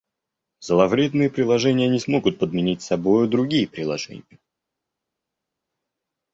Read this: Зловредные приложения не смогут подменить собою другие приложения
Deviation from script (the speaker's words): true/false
false